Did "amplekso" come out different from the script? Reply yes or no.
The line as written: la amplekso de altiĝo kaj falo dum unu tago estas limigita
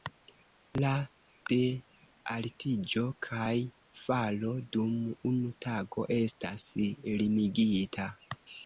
yes